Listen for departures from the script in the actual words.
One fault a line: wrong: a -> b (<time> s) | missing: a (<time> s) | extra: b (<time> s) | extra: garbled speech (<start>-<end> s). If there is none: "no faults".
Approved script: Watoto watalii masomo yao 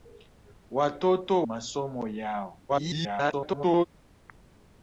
missing: watalii (1.5 s)
extra: garbled speech (2.7-3.9 s)